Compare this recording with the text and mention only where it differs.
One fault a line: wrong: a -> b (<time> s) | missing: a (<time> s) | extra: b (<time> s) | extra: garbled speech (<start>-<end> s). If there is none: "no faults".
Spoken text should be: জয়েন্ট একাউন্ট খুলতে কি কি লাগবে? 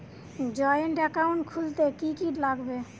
no faults